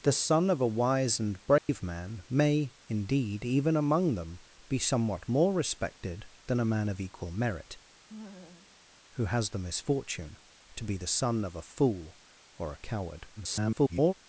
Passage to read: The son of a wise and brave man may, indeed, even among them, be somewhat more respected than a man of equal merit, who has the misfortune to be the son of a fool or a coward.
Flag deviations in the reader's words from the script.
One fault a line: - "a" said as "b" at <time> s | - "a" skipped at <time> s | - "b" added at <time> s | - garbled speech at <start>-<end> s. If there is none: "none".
- garbled speech at 13.4-14.1 s